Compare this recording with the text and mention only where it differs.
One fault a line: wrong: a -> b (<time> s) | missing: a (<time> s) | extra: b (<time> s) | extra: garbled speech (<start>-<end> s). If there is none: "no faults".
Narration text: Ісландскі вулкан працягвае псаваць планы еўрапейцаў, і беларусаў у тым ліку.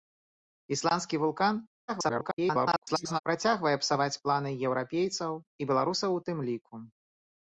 extra: garbled speech (1.9-3.2 s)